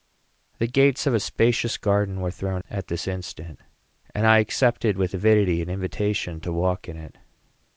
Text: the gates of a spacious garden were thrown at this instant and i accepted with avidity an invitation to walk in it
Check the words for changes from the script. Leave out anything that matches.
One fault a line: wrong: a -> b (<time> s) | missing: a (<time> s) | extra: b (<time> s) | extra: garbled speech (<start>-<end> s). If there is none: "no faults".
no faults